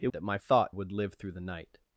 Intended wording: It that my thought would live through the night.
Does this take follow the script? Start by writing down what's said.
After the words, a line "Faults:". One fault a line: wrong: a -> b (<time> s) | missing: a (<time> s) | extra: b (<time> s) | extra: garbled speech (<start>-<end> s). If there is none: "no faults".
It that my thought would live through the night.
Faults:
no faults